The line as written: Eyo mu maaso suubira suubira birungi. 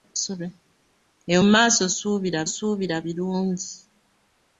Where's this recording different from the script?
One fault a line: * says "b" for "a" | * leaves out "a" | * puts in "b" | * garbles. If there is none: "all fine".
all fine